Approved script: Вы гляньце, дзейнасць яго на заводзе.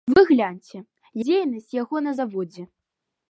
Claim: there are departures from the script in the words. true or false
false